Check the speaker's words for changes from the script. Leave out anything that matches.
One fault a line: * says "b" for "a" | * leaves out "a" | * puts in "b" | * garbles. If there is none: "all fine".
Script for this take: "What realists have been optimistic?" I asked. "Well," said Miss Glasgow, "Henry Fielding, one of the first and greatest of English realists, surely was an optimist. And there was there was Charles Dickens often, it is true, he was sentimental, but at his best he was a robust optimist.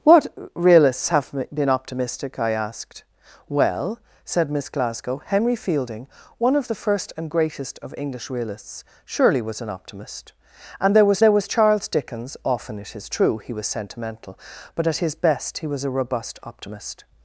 all fine